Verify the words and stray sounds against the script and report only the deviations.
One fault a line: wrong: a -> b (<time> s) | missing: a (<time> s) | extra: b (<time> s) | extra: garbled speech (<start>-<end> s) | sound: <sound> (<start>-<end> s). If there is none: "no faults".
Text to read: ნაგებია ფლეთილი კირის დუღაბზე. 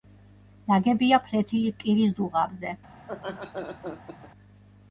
sound: laugh (3.0-4.3 s)